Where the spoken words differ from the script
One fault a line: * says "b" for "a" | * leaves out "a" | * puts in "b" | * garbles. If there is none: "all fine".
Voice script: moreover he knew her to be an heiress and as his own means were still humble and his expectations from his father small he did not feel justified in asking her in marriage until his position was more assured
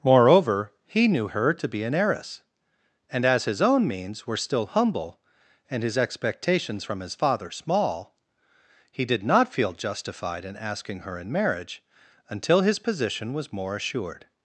all fine